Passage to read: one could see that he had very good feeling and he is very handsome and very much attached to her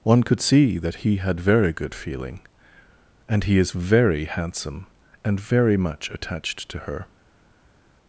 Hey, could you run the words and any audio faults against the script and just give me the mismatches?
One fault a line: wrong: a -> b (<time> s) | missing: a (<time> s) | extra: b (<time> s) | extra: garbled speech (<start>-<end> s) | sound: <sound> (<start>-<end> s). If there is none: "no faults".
no faults